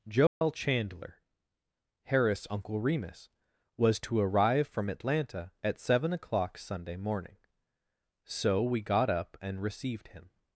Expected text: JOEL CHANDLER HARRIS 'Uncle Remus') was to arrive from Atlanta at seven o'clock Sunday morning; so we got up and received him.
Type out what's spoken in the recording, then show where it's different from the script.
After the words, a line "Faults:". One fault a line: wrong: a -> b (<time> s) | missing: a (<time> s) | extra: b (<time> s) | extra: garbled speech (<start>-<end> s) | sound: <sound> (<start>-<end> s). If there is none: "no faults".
JOEL CHANDLER HARRIS 'Uncle Remus') was to arrive from Atlanta at seven o'clock Sunday morning; so we got up and received him.
Faults:
sound: dropout (0.3-0.4 s)